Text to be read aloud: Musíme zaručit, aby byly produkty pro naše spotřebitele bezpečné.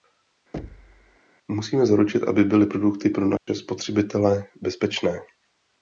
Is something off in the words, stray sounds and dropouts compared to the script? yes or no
yes